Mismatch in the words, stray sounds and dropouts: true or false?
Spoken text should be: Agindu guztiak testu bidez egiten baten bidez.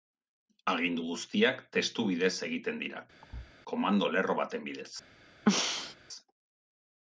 true